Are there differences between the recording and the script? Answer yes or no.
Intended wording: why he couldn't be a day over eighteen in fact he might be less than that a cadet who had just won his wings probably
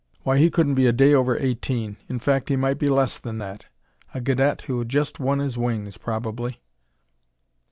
no